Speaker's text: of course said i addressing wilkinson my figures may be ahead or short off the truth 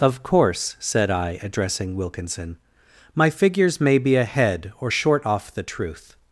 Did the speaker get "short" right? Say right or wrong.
right